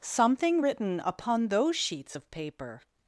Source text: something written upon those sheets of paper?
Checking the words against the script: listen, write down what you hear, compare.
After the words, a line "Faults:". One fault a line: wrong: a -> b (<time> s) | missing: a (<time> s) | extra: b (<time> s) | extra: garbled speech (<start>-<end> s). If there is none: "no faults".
something written upon those sheets of paper?
Faults:
no faults